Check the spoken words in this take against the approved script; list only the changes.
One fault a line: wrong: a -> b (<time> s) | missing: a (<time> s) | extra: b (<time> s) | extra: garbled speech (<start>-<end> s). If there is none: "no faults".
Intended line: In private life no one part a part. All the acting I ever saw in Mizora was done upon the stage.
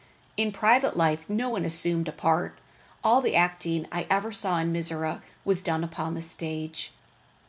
wrong: part -> assumed (1.6 s)